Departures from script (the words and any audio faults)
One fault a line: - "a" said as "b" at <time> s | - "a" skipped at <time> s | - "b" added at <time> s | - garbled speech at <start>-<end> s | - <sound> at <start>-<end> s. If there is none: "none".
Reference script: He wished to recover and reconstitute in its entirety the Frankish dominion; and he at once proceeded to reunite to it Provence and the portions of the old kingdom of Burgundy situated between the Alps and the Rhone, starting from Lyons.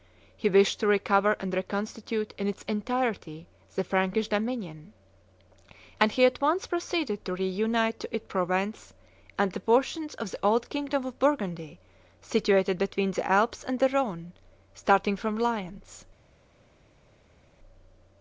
none